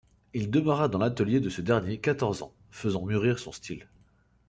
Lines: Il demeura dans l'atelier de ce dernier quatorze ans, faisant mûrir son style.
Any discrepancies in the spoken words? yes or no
no